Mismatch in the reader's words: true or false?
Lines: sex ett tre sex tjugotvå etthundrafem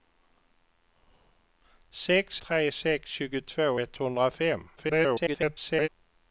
true